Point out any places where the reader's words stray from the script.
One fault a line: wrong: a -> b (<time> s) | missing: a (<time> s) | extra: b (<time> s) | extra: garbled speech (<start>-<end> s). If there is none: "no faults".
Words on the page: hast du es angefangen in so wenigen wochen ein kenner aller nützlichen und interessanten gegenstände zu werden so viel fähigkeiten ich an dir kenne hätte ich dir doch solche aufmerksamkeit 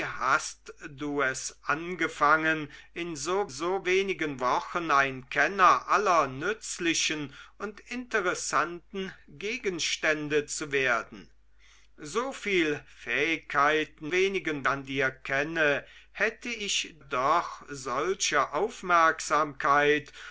extra: so (3.5 s)
wrong: ich -> wenigen (14.1 s)
missing: dir (17.0 s)